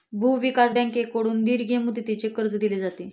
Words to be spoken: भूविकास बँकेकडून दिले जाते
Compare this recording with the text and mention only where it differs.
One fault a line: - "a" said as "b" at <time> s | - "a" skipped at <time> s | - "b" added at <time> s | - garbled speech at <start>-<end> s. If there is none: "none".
- "दीर्घ मुदतीचे कर्ज" added at 1.4 s